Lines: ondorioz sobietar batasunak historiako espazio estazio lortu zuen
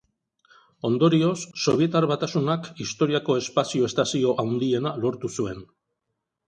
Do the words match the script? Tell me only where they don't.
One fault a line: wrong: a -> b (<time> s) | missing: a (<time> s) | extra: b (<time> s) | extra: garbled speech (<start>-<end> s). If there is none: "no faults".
extra: handiena (4.5 s)